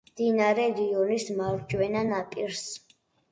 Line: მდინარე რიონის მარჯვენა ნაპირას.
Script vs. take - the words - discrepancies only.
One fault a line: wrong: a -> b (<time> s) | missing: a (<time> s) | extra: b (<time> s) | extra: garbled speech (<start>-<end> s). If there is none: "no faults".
no faults